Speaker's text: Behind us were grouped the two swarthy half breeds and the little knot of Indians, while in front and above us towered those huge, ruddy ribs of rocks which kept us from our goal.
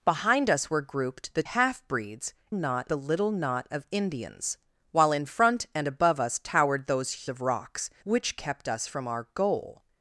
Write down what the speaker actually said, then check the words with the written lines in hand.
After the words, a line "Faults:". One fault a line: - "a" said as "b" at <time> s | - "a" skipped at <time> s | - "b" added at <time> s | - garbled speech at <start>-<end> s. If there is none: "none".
Behind us were grouped the half breeds knot the little knot of Indians, while in front and above us towered those of rocks which kept us from our goal.
Faults:
- "two swarthy" skipped at 1.4 s
- "and" said as "knot" at 2.5 s
- "huge ruddy ribs" skipped at 7.2 s